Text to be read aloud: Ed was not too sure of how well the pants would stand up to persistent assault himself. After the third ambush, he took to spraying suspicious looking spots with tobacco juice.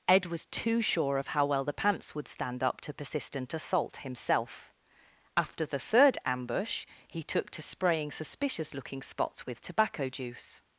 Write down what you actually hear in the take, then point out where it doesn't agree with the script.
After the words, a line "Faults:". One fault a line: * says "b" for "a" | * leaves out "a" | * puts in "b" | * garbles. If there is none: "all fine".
Ed was too sure of how well the pants would stand up to persistent assault himself. After the third ambush, he took to spraying suspicious looking spots with tobacco juice.
Faults:
* leaves out "not"